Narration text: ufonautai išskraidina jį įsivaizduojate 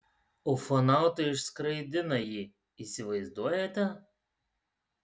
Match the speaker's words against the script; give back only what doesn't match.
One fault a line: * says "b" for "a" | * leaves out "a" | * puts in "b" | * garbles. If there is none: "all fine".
all fine